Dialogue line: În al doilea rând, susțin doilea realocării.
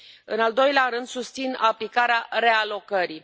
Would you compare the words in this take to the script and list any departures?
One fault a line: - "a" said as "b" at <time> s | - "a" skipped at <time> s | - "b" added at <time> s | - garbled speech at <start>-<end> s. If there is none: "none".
- "doilea" said as "aplicarea" at 1.6 s